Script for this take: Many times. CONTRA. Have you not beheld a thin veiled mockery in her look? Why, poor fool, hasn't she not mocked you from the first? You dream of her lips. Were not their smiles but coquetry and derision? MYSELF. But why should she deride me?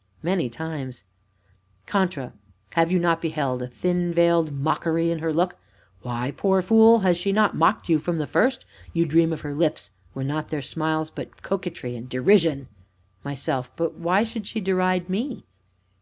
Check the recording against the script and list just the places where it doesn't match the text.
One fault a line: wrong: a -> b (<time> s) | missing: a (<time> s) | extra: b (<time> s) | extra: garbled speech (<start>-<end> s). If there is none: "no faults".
wrong: hasn't -> has (7.0 s)